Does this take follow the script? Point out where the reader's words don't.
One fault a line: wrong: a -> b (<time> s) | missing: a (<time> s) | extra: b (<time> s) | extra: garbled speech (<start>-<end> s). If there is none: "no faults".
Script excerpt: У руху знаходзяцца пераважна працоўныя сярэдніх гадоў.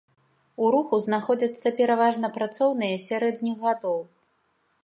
no faults